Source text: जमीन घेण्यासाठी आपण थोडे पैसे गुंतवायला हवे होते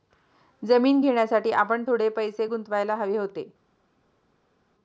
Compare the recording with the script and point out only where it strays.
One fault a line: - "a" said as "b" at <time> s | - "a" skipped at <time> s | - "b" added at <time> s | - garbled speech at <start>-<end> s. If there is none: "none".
none